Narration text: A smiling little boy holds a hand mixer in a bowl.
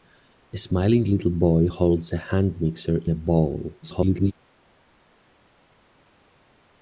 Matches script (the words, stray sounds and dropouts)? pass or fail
fail